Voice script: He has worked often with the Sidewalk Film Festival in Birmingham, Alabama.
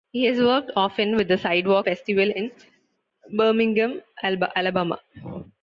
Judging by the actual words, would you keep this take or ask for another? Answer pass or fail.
fail